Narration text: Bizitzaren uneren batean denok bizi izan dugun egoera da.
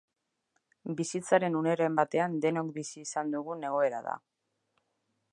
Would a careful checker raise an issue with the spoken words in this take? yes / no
no